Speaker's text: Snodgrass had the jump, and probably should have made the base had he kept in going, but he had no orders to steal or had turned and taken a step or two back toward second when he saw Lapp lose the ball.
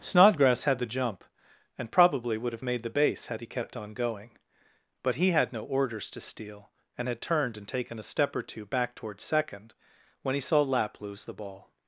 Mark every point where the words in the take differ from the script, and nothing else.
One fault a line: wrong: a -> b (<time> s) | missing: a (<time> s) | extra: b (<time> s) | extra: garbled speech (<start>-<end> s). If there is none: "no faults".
wrong: should -> would (2.4 s)
wrong: in -> on (3.7 s)
wrong: or -> and (7.0 s)